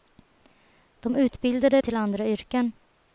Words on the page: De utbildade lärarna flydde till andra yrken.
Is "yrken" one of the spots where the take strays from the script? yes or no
no